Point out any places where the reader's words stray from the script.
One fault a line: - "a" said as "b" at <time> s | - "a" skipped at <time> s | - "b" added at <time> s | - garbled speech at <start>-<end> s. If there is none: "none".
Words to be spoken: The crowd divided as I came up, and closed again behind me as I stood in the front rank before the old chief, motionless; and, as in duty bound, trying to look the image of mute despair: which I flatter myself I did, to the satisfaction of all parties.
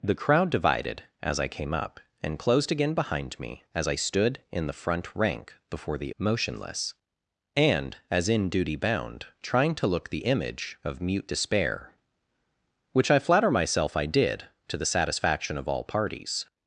- "old chief" skipped at 6.1 s